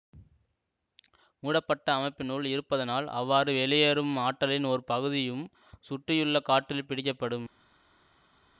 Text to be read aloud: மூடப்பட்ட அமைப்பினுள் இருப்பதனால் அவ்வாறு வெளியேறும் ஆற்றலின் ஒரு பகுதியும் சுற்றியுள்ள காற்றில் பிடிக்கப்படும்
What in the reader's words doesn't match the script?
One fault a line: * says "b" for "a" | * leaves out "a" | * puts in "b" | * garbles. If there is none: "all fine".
all fine